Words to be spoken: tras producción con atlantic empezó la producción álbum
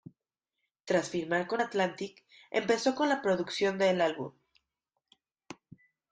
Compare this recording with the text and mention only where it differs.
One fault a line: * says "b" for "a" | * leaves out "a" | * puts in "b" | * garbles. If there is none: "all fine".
* says "firmar" for "producción"
* puts in "con"
* puts in "del"